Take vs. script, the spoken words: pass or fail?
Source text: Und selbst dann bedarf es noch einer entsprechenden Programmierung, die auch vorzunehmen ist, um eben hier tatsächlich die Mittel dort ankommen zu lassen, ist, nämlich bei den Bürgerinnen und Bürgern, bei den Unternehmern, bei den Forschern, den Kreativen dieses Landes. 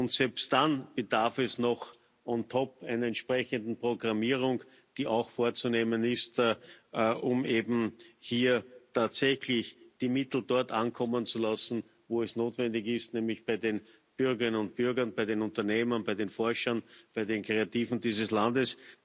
fail